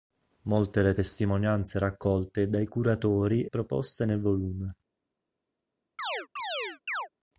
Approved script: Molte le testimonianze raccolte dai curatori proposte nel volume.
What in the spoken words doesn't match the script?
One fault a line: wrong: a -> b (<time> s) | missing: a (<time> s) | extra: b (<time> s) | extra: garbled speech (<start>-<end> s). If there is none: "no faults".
no faults